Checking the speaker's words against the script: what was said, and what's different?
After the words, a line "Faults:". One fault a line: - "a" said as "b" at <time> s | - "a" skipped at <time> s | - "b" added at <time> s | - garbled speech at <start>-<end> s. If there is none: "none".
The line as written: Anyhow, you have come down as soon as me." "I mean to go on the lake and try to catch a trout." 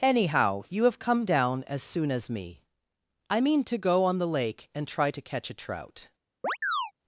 Anyhow, you have come down as soon as me." "I mean to go on the lake and try to catch a trout."
Faults:
none